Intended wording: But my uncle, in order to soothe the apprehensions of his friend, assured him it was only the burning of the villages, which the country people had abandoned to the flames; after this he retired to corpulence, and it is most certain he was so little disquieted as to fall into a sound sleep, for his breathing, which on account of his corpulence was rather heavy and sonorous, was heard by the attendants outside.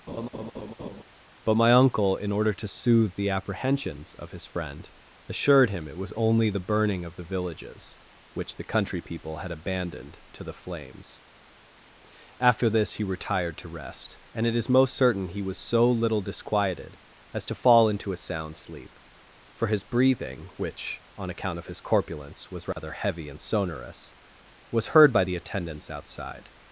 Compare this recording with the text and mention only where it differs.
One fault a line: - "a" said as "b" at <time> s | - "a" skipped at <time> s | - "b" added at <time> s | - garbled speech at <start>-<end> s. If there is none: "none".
- "corpulence" said as "rest" at 13.7 s